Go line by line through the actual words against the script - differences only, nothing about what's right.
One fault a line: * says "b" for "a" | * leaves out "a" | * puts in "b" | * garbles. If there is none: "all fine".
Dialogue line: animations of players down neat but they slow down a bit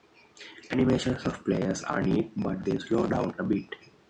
* says "are" for "down"